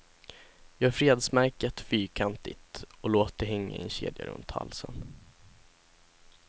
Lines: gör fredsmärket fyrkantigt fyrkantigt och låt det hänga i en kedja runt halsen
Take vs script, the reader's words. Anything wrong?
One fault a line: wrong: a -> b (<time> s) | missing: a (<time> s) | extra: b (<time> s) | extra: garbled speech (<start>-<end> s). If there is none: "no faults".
missing: fyrkantigt (2.8 s)